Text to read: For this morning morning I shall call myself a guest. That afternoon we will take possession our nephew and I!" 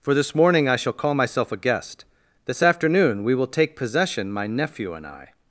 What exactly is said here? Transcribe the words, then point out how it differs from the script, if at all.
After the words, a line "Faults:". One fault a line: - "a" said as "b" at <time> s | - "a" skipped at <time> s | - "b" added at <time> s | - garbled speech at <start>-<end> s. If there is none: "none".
For this morning I shall call myself a guest. This afternoon we will take possession my nephew and I!"
Faults:
- "morning" skipped at 0.7 s
- "That" said as "This" at 2.5 s
- "our" said as "my" at 4.3 s